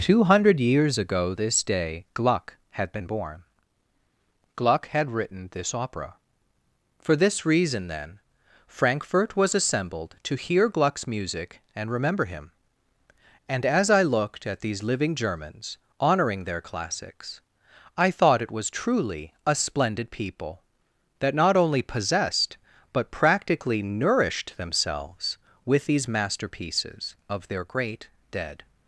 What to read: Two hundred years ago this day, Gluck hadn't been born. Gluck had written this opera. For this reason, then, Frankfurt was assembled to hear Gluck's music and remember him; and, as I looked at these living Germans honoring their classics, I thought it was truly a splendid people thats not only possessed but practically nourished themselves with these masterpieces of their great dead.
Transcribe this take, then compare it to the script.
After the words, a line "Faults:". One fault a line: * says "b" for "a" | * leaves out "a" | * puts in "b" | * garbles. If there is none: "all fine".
Two hundred years ago this day, Gluck had been born. Gluck had written this opera. For this reason, then, Frankfurt was assembled to hear Gluck's music and remember him; and, as I looked at these living Germans honoring their classics, I thought it was truly a splendid people that not only possessed but practically nourished themselves with these masterpieces of their great dead.
Faults:
* says "had" for "hadn't"
* says "that" for "thats"